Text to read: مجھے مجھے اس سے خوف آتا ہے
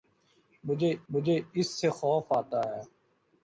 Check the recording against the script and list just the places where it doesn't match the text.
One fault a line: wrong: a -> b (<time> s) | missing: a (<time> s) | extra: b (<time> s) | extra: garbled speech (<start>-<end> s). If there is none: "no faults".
no faults